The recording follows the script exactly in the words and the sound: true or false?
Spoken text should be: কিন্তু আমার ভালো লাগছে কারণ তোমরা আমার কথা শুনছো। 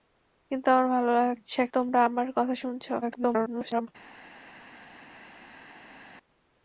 false